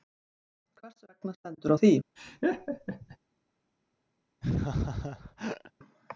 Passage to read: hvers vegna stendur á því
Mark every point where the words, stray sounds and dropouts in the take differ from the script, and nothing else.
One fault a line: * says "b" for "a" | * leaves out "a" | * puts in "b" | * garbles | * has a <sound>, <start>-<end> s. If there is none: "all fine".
* has a laugh, 2.2-3.2 s
* has a laugh, 4.4-5.7 s